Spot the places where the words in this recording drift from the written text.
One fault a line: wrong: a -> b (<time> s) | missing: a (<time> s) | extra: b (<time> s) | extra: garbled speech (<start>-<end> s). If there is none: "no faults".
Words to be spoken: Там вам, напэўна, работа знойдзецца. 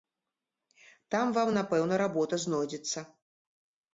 no faults